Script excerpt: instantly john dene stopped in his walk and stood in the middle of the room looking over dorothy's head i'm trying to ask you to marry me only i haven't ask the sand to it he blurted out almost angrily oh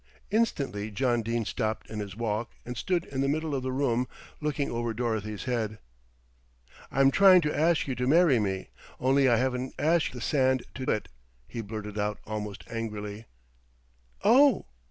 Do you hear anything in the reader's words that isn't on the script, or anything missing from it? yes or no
no